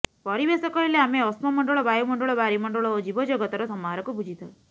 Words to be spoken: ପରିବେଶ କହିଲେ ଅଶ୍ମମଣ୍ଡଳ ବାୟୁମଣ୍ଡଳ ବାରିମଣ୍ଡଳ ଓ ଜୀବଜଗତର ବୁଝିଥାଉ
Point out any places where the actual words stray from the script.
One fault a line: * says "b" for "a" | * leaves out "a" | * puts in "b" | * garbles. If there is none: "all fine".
* puts in "ଆମେ"
* puts in "ସମାହାରକୁ"